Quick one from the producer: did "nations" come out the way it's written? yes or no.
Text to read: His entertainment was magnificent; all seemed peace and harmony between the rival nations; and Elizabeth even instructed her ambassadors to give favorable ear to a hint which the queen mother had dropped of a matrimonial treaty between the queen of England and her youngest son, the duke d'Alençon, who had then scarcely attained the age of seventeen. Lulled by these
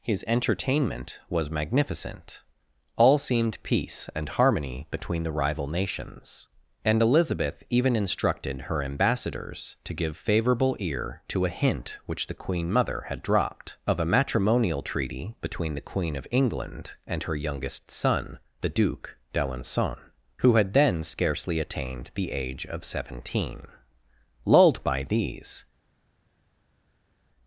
yes